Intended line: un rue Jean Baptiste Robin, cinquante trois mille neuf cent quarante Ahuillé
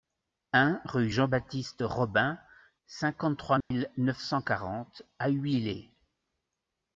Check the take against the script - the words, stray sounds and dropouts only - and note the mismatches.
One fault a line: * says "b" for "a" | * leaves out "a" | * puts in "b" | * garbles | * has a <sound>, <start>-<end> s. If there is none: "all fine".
* has a dropout, 3.6-3.7 s